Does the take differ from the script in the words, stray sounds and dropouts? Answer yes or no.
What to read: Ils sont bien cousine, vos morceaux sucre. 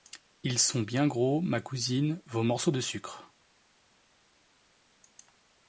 yes